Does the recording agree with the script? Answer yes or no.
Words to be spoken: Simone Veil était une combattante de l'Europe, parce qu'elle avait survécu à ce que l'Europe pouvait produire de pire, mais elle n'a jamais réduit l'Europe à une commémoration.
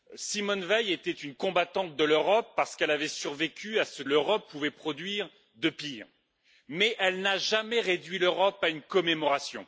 no